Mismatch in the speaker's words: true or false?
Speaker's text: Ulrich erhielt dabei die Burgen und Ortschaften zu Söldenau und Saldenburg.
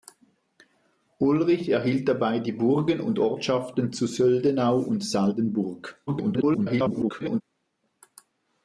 true